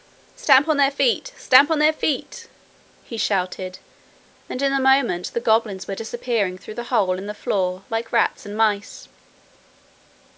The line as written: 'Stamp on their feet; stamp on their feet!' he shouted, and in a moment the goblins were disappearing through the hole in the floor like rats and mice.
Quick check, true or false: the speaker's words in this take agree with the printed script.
true